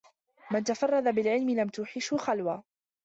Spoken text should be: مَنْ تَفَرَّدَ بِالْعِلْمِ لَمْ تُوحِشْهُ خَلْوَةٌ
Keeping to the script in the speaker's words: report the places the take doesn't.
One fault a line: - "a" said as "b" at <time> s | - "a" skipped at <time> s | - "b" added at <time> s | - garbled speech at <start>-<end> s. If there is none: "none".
none